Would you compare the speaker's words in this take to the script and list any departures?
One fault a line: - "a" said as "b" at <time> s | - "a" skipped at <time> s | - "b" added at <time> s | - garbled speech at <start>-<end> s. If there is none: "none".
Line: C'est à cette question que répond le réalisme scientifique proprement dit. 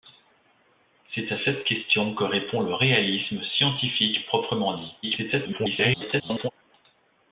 - garbled speech at 5.0-6.5 s